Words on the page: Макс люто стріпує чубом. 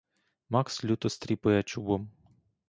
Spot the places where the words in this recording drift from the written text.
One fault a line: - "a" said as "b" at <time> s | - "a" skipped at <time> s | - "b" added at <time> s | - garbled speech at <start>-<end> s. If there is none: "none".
none